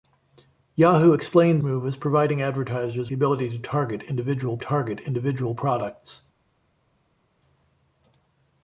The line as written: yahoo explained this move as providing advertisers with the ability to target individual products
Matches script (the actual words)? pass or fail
fail